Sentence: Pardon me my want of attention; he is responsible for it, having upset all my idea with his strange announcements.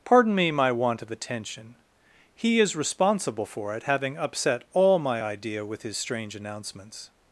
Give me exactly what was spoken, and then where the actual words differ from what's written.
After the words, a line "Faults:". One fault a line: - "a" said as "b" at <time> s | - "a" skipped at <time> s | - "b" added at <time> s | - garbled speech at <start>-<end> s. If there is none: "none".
Pardon me my want of attention; he is responsible for it, having upset all my idea with his strange announcements.
Faults:
none